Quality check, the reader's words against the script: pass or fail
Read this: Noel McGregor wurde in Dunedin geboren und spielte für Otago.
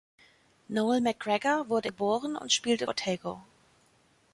fail